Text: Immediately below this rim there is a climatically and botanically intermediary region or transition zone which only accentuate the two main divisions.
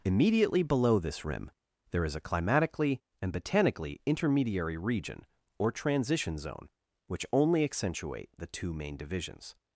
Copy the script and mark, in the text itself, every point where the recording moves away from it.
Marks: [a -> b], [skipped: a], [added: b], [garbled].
Immediately below this rim there is a climatically and botanically intermediary region or transition zone which only accentuate the two main divisions.